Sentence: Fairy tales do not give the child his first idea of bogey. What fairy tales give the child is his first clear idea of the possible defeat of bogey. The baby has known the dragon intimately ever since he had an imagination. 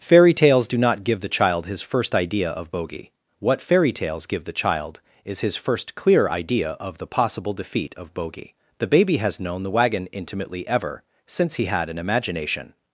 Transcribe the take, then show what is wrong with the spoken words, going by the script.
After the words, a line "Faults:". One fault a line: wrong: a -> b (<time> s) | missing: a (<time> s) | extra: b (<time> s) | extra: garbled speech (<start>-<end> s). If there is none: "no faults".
Fairy tales do not give the child his first idea of bogey. What fairy tales give the child is his first clear idea of the possible defeat of bogey. The baby has known the wagon intimately ever since he had an imagination.
Faults:
wrong: dragon -> wagon (9.7 s)